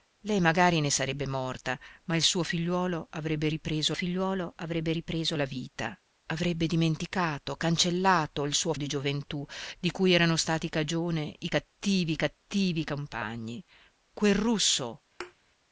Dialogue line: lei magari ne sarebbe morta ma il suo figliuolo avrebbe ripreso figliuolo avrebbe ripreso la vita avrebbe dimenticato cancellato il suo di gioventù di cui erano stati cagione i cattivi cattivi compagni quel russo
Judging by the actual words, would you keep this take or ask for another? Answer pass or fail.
pass